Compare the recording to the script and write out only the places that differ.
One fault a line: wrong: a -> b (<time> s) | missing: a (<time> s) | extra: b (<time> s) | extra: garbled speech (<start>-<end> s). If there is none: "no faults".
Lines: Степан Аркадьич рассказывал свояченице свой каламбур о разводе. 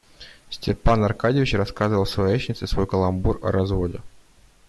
no faults